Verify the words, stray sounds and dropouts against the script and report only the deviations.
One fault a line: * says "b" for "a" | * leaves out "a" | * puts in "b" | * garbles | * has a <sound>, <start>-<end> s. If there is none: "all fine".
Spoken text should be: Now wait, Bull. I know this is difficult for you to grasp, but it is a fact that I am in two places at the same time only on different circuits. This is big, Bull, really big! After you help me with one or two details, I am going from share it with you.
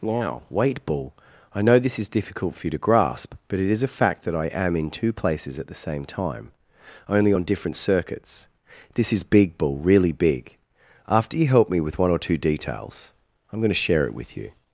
* says "to" for "from"